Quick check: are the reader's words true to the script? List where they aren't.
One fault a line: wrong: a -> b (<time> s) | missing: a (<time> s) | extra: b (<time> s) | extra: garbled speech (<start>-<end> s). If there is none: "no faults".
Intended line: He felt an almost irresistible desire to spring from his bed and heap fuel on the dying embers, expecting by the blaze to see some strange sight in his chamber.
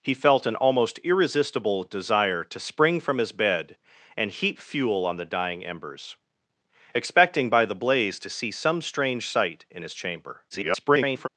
extra: garbled speech (10.5-11.3 s)